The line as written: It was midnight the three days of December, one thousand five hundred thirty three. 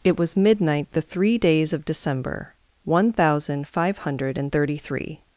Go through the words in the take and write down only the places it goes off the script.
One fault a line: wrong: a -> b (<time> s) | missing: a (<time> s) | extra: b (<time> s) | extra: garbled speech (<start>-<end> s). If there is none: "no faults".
no faults